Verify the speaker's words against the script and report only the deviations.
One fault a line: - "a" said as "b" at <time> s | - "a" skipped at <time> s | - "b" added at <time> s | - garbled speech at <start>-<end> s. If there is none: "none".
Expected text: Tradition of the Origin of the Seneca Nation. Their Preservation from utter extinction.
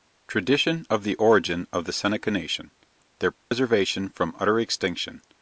none